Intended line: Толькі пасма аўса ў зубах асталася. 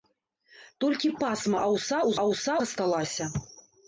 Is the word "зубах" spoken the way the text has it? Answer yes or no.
no